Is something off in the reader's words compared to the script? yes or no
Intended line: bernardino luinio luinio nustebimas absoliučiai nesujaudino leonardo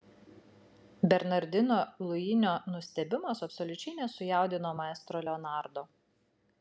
yes